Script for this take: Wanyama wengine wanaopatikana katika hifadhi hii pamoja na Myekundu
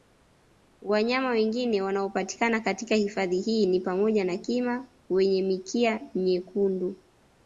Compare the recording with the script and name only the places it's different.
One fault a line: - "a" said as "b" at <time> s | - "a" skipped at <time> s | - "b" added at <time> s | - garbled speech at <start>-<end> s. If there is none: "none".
- "ni" added at 3.7 s
- "Kima wenye mikia" added at 4.4 s